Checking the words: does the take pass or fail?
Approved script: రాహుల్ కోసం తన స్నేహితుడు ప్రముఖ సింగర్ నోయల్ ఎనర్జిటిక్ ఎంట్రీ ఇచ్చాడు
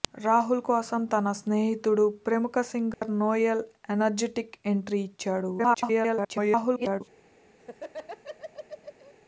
fail